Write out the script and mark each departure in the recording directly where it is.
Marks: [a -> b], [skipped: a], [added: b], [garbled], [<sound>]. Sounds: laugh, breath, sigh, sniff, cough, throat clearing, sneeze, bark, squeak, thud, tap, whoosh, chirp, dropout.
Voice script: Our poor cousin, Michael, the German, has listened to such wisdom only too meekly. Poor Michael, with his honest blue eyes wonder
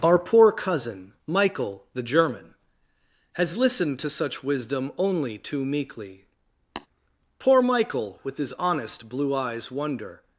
Our poor cousin, Michael, the German, has listened to such wisdom only too meekly. [tap] Poor Michael, with his honest blue eyes wonder